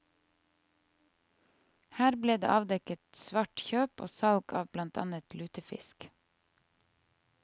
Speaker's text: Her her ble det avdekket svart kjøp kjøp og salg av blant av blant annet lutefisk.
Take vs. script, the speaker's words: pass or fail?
fail